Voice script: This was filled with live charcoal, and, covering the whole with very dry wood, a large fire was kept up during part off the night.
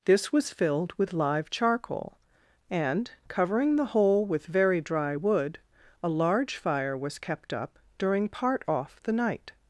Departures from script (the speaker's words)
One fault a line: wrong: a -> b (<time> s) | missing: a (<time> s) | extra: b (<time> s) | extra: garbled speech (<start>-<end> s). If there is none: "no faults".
no faults